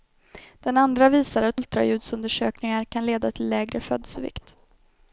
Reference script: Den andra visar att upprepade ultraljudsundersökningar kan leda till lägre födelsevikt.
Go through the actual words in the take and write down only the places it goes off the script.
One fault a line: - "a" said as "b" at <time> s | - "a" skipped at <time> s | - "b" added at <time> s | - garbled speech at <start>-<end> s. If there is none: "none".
- "upprepade" skipped at 1.6 s